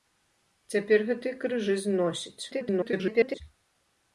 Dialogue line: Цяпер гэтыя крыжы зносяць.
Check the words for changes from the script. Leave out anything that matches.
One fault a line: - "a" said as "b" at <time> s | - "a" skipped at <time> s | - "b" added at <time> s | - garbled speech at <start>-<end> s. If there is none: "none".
- garbled speech at 2.5-3.4 s